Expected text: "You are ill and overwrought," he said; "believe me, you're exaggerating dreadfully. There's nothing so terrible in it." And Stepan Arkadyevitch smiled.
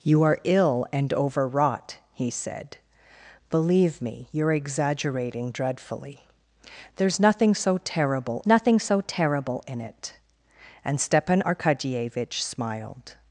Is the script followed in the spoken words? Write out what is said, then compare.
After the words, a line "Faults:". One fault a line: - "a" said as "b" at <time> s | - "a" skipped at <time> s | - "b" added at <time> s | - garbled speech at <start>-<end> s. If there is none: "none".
"You are ill and overwrought," he said; "believe me, you're exaggerating dreadfully. There's nothing so terrible nothing so terrible in it." And Stepan Arkadyevitch smiled.
Faults:
- "nothing so terrible" added at 8.5 s